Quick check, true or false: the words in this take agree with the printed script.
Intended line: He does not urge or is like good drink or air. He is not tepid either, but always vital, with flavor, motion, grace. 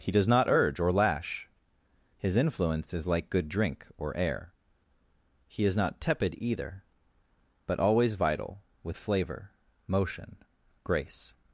false